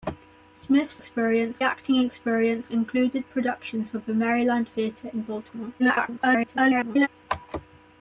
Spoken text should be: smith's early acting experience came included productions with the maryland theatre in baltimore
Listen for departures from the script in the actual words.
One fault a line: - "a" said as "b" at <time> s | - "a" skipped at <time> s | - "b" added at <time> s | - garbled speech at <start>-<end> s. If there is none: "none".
- "early" said as "experience" at 1.0 s
- "came" skipped at 2.7 s
- garbled speech at 5.8-7.1 s